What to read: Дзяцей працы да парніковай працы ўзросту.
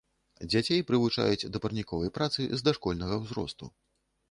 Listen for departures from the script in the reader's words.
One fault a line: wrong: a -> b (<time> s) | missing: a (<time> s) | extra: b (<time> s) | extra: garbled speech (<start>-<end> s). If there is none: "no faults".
wrong: працы -> прывучаюць (0.9 s)
extra: з дашкольнага (2.6 s)